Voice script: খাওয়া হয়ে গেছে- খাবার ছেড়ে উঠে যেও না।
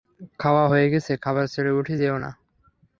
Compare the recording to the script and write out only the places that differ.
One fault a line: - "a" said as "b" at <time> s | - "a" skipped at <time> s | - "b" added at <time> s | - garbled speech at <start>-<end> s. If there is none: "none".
none